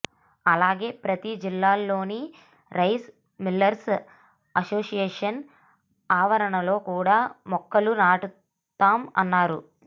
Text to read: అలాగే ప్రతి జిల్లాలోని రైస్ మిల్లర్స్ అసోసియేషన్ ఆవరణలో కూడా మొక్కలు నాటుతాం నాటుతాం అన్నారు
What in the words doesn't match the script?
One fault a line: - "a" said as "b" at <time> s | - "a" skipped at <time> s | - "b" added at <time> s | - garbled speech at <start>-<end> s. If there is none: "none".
- "నాటుతాం" skipped at 9.0 s